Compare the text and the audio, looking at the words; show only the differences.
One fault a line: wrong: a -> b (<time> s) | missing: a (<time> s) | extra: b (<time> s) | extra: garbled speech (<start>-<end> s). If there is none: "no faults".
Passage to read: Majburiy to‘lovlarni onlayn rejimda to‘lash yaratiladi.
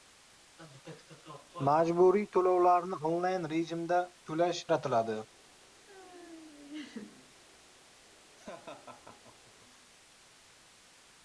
no faults